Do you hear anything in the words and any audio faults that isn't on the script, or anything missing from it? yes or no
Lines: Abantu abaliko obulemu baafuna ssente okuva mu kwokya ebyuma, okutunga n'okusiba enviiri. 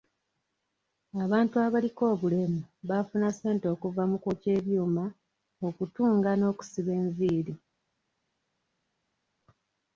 no